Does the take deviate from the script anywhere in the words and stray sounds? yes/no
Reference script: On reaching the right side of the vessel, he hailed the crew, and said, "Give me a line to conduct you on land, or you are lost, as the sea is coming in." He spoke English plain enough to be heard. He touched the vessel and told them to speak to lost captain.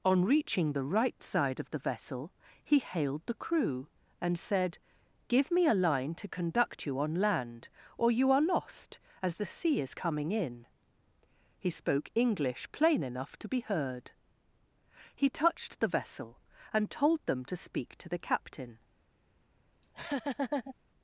yes